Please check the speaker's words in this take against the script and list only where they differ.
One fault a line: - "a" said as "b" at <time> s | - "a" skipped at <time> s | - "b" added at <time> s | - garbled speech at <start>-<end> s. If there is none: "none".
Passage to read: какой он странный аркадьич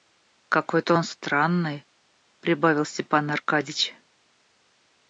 - "то" added at 0.8 s
- "прибавил степан" added at 2.4 s